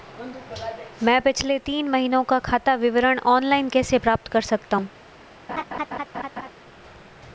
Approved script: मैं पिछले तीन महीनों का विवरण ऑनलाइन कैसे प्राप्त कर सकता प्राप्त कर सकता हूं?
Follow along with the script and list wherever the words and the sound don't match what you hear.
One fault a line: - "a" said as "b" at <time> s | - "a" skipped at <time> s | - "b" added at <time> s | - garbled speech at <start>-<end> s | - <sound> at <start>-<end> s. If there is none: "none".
- "खाता" added at 2.4 s
- "प्राप्त कर सकता" skipped at 4.8 s
- laugh at 5.5-6.5 s